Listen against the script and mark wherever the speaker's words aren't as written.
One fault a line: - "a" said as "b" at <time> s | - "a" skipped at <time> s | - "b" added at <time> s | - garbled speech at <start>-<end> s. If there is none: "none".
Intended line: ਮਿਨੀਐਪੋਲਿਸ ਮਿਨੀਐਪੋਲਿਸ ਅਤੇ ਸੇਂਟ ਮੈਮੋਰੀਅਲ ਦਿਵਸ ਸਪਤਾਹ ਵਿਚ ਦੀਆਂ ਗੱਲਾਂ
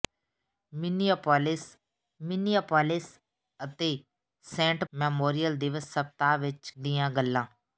none